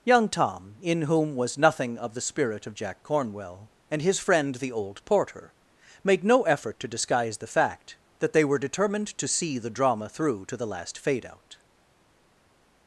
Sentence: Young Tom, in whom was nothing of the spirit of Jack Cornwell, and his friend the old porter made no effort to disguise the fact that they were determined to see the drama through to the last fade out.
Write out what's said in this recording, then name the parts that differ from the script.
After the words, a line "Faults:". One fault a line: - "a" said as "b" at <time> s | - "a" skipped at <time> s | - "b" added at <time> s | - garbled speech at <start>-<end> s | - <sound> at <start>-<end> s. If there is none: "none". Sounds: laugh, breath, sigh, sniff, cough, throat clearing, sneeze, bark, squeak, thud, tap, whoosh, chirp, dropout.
Young Tom, in whom was nothing of the spirit of Jack Cornwell, and his friend the old porter made no effort to disguise the fact that they were determined to see the drama through to the last fade out.
Faults:
none